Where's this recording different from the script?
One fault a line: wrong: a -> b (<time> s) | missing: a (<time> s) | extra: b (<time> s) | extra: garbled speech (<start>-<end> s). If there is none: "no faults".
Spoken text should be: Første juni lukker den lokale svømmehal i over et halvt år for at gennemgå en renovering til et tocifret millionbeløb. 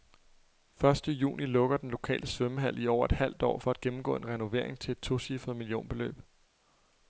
no faults